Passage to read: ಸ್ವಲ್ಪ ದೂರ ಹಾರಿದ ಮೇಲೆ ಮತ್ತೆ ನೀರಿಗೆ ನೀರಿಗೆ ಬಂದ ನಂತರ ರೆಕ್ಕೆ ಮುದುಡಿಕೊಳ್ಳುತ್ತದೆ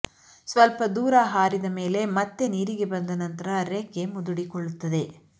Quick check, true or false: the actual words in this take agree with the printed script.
false